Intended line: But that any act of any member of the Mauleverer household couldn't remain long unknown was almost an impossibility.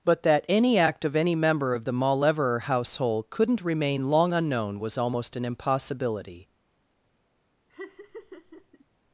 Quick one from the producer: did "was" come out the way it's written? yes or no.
yes